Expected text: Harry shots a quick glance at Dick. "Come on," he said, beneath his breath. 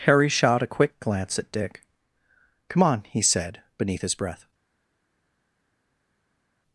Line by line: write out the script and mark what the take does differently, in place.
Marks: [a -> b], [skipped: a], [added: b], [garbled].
Harry [shots -> shot] a quick glance at Dick. "Come on," he said, beneath his breath.